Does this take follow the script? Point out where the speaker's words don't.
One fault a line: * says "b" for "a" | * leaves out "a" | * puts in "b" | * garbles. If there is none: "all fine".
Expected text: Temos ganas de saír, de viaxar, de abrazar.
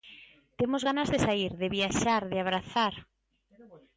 all fine